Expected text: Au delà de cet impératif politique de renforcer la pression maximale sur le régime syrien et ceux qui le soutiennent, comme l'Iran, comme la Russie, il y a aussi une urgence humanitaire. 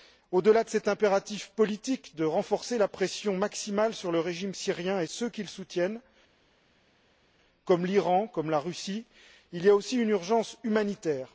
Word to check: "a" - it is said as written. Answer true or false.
true